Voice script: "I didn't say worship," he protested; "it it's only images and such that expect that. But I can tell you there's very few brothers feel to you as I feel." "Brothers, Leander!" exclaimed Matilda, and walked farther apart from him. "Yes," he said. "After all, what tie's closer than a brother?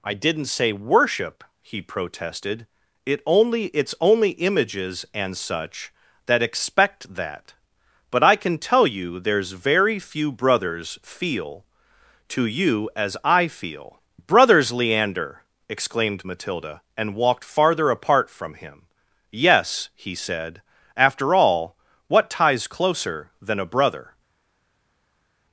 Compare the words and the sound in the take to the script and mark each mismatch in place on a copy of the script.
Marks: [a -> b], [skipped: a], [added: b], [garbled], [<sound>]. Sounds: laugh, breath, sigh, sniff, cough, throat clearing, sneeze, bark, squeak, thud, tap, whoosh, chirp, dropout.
"I didn't say worship," he protested; "it [added: only] it's only images and such that expect that. But I can tell you there's very few brothers feel to you as I feel." "Brothers, Leander!" exclaimed Matilda, and walked farther apart from him. "Yes," he said. "After all, what tie's closer than a brother?